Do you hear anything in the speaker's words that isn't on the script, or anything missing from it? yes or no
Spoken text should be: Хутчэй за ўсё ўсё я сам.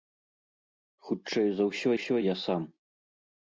no